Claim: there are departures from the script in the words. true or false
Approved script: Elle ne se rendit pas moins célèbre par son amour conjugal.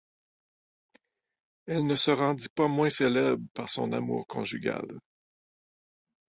false